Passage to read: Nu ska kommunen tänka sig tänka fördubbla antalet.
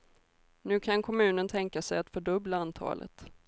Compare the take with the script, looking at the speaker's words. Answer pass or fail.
fail